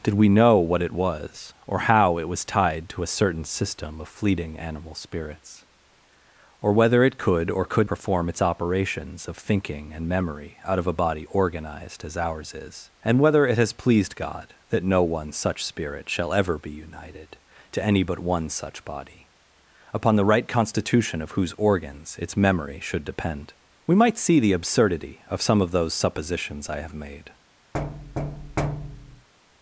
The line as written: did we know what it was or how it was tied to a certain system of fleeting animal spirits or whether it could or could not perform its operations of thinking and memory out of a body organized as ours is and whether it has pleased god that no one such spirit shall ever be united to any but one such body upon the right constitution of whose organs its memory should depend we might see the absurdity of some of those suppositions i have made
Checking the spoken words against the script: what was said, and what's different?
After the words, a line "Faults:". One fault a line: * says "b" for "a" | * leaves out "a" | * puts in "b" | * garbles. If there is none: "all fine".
did we know what it was or how it was tied to a certain system of fleeting animal spirits or whether it could or could perform its operations of thinking and memory out of a body organized as ours is and whether it has pleased god that no one such spirit shall ever be united to any but one such body upon the right constitution of whose organs its memory should depend we might see the absurdity of some of those suppositions i have made
Faults:
* leaves out "not"